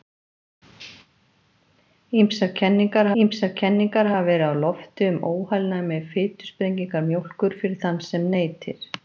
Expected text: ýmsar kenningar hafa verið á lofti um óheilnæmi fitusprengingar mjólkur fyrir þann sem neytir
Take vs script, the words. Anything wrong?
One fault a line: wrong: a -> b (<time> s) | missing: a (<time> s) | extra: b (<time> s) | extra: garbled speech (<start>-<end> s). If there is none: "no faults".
extra: ýmsar kenningar (3.2 s)